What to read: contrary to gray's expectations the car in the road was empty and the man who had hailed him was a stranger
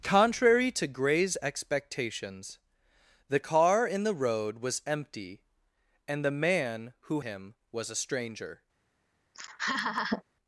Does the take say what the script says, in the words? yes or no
no